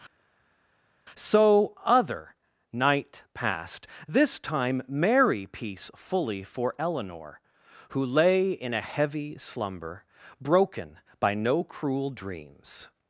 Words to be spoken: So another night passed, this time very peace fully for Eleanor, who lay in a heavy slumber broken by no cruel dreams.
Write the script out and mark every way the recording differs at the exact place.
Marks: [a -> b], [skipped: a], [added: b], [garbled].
So [another -> other] night passed, this time [very -> merry] peace fully for Eleanor, who lay in a heavy slumber broken by no cruel dreams.